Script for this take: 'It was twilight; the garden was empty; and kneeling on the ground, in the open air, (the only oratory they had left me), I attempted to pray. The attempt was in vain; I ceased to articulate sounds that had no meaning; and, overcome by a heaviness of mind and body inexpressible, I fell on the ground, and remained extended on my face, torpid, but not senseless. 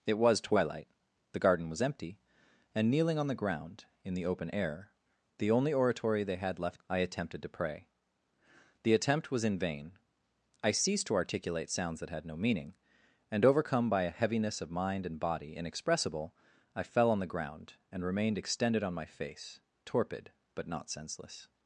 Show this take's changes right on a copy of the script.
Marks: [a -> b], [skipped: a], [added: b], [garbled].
'It was twilight; the garden was empty; and kneeling on the ground, in the open air, (the only oratory they had left [skipped: me),] I attempted to pray. The attempt was in vain; I ceased to articulate sounds that had no meaning; and, overcome by a heaviness of mind and body inexpressible, I fell on the ground, and remained extended on my face, torpid, but not senseless.